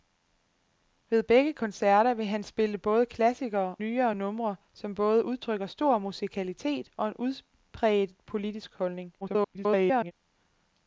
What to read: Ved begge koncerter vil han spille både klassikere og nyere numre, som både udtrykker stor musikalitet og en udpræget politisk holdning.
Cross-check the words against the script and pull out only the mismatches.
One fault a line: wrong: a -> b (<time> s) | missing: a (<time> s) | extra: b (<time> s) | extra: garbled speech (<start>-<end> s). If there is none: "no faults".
missing: og (3.8 s)
extra: garbled speech (9.2-10.1 s)